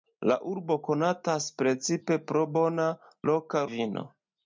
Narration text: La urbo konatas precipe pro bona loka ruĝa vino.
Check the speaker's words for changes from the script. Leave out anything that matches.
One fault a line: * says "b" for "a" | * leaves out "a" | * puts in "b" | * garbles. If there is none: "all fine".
* leaves out "ruĝa"